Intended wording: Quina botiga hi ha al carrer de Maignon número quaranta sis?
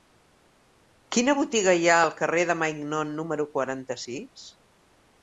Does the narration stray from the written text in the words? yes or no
no